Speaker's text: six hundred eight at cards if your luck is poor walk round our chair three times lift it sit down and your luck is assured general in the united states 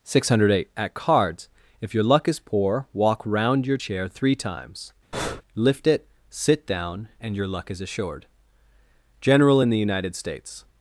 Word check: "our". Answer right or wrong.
wrong